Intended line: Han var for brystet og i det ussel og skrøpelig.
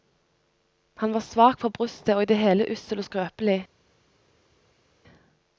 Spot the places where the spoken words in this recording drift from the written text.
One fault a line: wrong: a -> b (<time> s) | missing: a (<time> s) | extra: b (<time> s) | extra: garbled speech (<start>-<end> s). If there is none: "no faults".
extra: svak (1.2 s)
extra: hele (2.4 s)